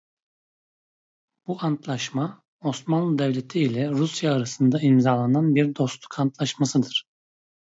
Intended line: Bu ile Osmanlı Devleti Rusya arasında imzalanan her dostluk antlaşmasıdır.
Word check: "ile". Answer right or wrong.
wrong